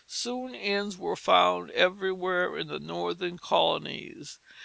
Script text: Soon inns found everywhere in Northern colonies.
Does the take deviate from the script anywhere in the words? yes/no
yes